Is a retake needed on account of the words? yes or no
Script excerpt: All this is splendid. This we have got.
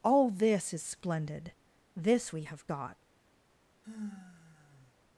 no